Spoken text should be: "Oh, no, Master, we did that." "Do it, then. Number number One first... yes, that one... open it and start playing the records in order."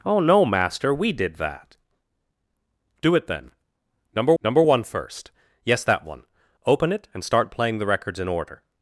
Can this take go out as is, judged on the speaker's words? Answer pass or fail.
pass